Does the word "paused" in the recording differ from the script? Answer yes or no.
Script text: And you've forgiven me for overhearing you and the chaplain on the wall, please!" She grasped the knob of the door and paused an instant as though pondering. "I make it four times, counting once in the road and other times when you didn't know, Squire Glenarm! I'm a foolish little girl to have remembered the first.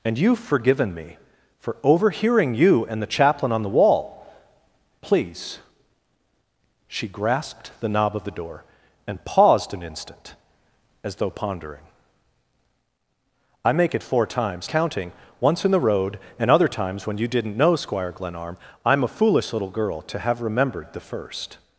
no